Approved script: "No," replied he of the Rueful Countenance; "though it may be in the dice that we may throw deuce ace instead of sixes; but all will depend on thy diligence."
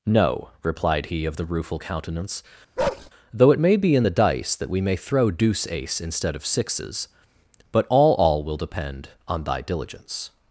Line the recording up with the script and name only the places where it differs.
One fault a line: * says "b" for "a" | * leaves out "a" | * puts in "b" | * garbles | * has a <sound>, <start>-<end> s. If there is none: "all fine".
* has a bark, 2.8-3.1 s
* puts in "all"